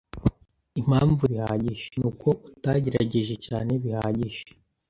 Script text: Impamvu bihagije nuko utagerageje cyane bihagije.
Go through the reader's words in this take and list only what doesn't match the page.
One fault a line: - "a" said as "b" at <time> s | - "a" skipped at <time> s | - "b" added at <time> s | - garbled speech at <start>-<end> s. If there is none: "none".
none